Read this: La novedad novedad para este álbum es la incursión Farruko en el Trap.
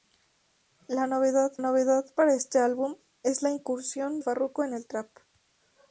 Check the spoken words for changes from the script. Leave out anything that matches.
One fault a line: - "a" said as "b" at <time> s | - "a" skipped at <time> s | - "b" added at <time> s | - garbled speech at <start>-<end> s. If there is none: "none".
none